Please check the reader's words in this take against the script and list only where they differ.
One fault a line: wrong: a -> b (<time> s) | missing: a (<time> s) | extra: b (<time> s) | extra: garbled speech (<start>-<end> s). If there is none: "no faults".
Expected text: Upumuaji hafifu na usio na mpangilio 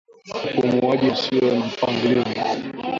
missing: hafifu na (1.1 s)